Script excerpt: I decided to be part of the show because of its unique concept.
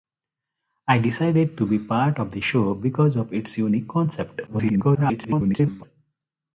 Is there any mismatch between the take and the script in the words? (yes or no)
yes